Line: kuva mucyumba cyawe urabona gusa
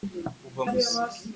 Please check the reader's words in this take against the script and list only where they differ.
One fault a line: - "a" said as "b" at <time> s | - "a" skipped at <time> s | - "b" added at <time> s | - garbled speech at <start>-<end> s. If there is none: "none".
- "mucyumba cyawe urabona" skipped at 0.6 s